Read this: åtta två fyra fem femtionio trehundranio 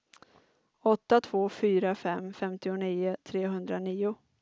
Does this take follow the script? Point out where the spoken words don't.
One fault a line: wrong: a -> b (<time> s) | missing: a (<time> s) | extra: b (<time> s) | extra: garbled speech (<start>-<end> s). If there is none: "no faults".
no faults